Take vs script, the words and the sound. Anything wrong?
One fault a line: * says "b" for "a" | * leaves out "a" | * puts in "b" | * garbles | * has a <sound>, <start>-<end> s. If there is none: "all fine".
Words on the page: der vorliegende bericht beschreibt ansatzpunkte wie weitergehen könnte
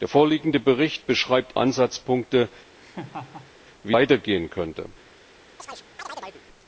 * has a laugh, 2.8-3.5 s
* has a chirp, 5.6-6.4 s